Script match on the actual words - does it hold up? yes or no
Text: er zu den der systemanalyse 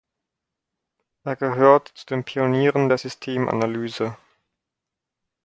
no